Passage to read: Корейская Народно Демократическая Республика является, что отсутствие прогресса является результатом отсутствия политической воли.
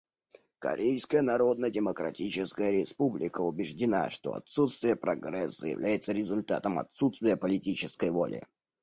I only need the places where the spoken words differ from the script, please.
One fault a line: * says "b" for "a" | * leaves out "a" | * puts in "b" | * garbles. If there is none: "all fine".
* says "убеждена" for "является"